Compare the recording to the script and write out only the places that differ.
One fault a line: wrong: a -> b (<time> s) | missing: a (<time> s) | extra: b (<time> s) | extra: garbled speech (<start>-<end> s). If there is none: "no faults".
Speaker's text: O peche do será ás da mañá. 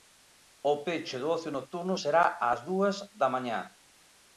extra: ocio nocturno (1.4 s)
extra: dúas (2.7 s)